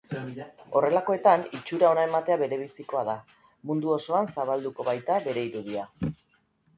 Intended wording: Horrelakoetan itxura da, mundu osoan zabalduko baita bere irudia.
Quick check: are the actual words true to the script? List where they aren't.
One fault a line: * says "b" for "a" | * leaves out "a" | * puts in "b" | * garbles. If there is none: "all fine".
* puts in "ona ematea berebizikoa"